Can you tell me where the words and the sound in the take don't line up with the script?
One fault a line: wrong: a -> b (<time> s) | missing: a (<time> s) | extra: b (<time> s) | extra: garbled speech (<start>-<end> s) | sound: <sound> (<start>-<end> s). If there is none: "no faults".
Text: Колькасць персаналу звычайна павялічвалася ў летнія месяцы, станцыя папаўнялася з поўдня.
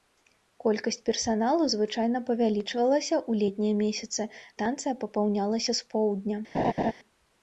sound: laugh (6.5-6.9 s)